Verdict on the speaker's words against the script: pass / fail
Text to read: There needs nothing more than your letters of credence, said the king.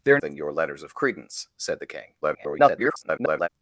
fail